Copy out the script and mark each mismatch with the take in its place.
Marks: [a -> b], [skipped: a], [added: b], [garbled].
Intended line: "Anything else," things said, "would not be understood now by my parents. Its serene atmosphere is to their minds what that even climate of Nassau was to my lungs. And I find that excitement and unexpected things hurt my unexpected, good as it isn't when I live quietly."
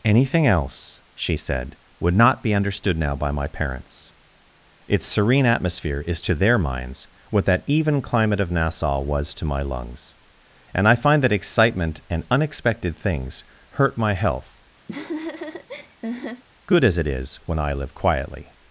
"Anything else," [things -> she] said, "would not be understood now by my parents. Its serene atmosphere is to their minds what that even climate of Nassau was to my lungs. And I find that excitement and unexpected things hurt my [unexpected, -> health] good as it [isn't -> is] when I live quietly."